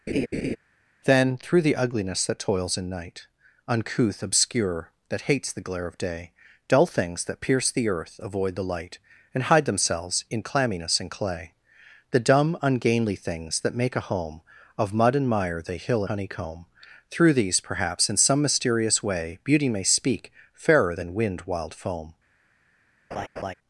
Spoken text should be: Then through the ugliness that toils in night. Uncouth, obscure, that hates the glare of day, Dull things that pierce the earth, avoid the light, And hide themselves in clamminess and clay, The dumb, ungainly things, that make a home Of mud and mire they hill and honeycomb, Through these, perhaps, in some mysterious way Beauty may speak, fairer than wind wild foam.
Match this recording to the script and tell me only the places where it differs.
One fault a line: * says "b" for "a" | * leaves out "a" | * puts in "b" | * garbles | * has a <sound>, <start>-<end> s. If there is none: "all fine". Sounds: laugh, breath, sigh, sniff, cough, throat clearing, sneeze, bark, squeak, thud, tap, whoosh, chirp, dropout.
* has a laugh, 0.1-0.6 s
* leaves out "and"
* has a laugh, 23.1-23.5 s